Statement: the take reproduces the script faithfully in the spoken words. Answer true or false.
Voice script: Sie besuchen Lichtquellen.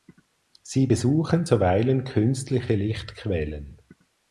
false